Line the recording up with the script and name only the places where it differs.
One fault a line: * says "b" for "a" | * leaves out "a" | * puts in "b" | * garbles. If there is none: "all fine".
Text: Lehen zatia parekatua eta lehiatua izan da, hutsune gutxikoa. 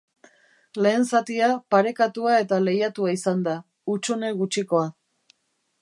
all fine